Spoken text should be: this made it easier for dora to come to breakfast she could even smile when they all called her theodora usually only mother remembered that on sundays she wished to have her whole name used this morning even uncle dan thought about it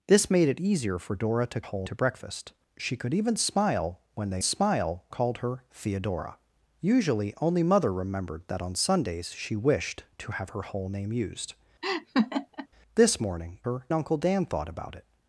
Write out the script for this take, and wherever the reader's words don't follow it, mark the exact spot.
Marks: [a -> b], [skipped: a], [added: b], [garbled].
this made it easier for dora to [come -> whole] to breakfast she could even smile when they [all -> smile] called her theodora usually only mother remembered that on sundays she wished to have her whole name used this morning [even -> her] uncle dan thought about it